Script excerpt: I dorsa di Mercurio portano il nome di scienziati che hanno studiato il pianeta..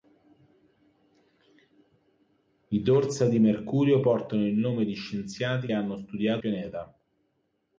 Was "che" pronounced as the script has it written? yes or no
no